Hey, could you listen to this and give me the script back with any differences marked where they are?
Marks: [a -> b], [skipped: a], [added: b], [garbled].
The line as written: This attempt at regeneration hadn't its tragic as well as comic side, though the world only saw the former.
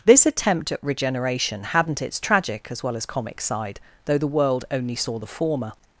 This attempt at regeneration hadn't its tragic as well as comic side, though the world only saw the former.